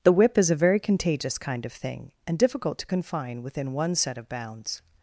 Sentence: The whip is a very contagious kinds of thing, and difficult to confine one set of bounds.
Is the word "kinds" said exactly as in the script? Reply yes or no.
no